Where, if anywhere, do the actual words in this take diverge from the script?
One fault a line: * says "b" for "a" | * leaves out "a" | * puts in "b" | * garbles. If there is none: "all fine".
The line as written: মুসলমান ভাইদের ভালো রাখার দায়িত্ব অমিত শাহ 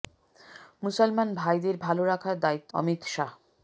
all fine